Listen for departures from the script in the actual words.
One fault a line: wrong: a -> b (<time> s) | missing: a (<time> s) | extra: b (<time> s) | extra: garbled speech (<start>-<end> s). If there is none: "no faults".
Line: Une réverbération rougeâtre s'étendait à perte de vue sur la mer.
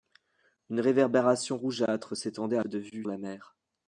missing: perte (2.6 s)
missing: sur (3.1 s)